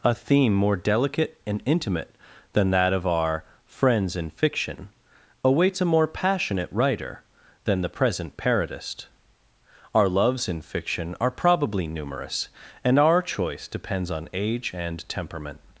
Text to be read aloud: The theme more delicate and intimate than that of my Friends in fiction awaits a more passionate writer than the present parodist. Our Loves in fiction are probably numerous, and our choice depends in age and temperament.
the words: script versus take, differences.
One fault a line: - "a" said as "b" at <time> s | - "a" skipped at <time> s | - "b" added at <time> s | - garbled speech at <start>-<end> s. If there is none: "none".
- "The" said as "A" at 0.0 s
- "my" said as "our" at 3.0 s
- "in" said as "on" at 14.1 s